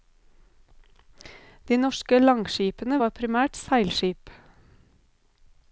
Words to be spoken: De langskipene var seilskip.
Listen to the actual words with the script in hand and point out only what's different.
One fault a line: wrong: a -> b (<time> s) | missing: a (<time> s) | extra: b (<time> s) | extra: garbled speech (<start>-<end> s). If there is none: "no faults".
extra: norske (1.8 s)
extra: primært (3.2 s)